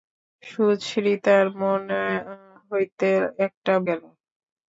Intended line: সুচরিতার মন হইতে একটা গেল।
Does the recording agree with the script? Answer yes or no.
yes